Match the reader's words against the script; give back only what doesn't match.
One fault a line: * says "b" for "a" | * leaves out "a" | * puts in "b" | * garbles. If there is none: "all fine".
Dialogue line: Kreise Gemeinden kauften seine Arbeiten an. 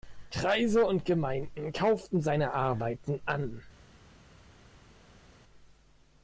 * puts in "und"